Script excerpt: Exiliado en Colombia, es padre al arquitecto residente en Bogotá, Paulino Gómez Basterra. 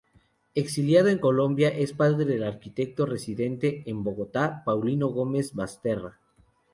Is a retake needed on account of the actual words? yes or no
yes